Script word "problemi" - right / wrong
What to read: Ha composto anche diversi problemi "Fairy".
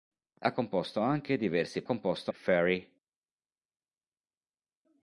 wrong